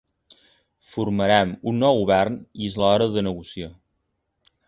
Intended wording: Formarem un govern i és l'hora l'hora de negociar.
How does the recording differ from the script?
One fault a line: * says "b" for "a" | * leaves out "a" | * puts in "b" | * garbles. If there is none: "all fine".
* puts in "nou"
* leaves out "l'hora"